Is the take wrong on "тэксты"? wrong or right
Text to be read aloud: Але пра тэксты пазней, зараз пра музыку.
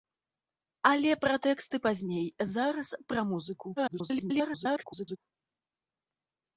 right